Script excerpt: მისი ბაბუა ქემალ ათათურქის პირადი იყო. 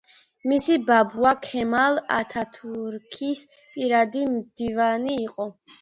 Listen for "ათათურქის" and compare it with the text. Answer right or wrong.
right